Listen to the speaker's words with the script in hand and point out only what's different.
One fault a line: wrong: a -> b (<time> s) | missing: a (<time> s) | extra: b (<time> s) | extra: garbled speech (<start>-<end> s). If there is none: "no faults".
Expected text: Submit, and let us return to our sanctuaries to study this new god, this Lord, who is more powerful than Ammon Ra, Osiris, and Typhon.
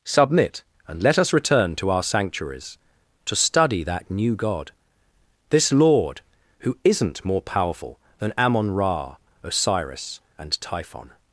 wrong: this -> that (3.8 s)
wrong: is -> isn't (6.8 s)